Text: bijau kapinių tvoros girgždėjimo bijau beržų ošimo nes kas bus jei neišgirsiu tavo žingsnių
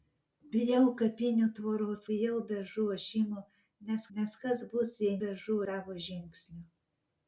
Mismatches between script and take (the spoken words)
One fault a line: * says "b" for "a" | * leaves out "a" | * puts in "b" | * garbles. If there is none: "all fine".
* leaves out "girgždėjimo"
* puts in "nes"
* says "beržų" for "neišgirsiu"